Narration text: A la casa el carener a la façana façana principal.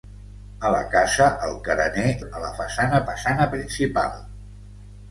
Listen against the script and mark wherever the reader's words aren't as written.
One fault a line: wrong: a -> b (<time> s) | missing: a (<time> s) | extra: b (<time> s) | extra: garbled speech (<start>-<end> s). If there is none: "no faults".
no faults